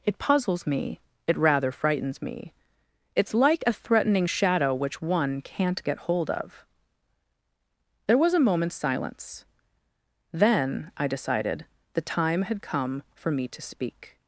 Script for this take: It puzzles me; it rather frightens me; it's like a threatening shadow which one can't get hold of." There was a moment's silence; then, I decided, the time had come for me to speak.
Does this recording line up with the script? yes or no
yes